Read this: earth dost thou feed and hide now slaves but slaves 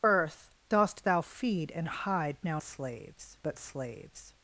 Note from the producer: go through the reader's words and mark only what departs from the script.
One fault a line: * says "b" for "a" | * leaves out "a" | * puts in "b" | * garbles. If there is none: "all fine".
all fine